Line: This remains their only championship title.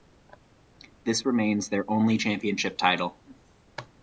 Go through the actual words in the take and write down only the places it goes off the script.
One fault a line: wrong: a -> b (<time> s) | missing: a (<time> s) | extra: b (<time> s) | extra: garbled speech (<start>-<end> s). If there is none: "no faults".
no faults